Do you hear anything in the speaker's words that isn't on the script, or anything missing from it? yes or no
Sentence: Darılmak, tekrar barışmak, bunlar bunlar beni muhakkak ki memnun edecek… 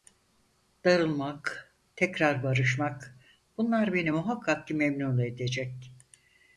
yes